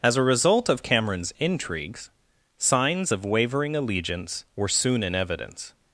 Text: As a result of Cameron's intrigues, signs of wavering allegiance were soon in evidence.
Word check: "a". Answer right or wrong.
right